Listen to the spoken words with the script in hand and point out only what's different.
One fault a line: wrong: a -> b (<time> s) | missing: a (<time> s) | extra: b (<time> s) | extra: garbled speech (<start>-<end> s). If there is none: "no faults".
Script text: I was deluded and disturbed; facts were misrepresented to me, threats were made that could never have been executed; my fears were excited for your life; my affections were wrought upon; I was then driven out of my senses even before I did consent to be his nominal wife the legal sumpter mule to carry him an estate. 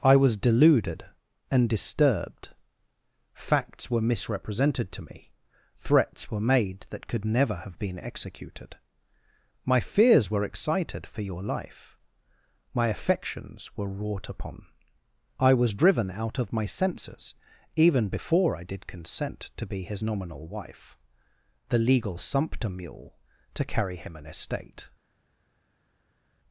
missing: then (15.8 s)